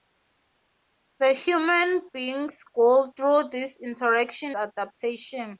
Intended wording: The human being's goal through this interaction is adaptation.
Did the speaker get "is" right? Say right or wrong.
wrong